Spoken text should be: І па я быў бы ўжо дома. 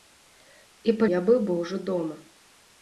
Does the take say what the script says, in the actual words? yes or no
yes